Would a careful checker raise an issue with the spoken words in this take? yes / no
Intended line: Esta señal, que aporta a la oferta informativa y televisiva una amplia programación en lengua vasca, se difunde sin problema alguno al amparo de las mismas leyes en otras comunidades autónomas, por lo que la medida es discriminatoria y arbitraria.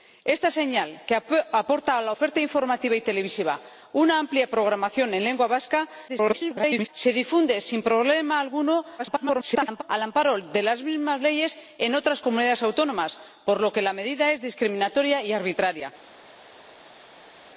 yes